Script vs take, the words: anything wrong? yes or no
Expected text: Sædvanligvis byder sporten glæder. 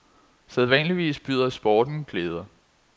no